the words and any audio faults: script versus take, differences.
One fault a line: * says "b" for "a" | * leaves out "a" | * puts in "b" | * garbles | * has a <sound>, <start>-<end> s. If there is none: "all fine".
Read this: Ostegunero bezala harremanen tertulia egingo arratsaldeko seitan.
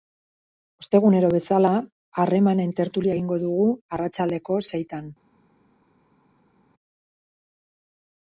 * puts in "dugu"